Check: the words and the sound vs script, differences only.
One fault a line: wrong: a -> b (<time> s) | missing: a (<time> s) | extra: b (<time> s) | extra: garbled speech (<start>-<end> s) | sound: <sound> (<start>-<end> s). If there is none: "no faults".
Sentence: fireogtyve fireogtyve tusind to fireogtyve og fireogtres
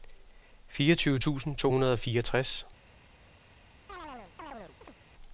missing: fireogtyve (1.2 s)
wrong: fireogtyve -> hundrede (1.7 s)
sound: chirp (3.9-5.0 s)